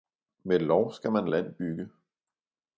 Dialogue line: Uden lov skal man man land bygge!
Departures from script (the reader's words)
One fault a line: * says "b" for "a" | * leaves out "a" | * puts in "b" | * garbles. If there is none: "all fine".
* says "Med" for "Uden"
* leaves out "man"